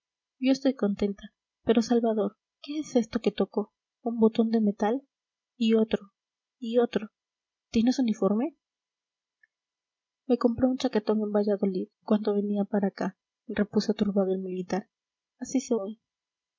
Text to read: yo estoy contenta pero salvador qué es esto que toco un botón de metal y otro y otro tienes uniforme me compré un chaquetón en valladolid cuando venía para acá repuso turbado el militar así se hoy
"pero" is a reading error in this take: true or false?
false